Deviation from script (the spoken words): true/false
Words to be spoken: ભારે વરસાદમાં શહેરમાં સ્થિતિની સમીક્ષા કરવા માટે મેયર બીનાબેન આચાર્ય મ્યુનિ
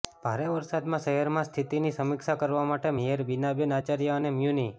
true